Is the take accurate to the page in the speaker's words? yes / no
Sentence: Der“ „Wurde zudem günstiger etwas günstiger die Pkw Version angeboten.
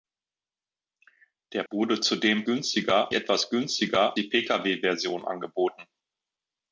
yes